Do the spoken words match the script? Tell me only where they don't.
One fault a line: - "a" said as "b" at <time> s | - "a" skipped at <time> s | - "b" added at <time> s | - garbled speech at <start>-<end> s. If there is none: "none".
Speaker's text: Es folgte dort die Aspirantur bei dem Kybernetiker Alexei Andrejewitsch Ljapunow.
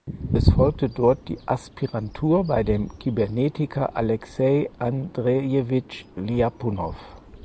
none